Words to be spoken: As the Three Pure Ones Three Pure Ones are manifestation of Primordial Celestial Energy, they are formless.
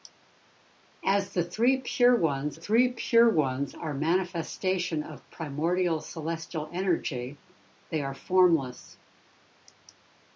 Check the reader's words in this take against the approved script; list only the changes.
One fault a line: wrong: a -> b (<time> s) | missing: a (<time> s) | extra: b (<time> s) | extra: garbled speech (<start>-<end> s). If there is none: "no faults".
no faults